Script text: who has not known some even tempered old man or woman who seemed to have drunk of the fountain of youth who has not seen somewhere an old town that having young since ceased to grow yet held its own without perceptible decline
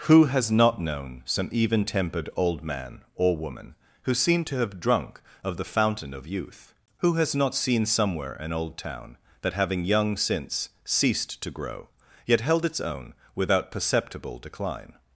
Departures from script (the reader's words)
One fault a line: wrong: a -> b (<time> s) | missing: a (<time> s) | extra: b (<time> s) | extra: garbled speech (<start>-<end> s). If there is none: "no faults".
no faults